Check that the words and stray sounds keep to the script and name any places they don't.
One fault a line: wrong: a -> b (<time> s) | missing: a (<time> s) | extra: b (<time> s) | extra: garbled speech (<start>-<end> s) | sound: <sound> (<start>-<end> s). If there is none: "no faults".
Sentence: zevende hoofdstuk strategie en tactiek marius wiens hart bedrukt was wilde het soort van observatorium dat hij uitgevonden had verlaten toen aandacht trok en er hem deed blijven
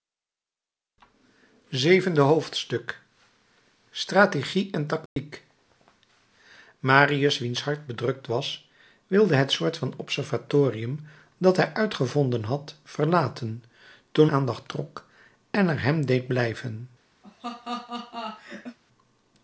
sound: dropout (5.1-5.2 s)
sound: laugh (17.2-18.8 s)